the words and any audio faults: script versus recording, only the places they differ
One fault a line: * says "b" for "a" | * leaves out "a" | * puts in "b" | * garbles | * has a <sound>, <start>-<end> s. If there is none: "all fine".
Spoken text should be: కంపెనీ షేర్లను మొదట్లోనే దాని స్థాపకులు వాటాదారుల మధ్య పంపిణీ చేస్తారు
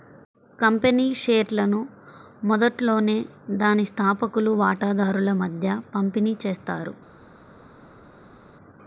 all fine